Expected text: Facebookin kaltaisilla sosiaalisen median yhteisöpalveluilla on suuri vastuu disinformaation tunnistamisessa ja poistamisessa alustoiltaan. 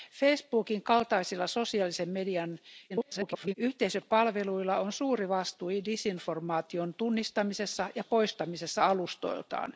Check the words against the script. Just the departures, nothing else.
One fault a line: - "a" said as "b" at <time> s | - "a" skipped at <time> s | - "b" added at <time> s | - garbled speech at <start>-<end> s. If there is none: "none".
- garbled speech at 2.9-3.5 s